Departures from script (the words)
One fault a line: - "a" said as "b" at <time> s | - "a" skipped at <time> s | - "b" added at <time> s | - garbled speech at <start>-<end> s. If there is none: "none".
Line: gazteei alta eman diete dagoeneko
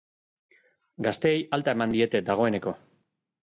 none